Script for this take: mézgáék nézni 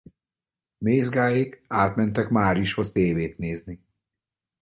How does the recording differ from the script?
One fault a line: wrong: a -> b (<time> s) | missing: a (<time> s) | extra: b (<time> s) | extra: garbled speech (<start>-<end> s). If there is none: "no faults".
extra: átmentek márishoz tévét (1.7 s)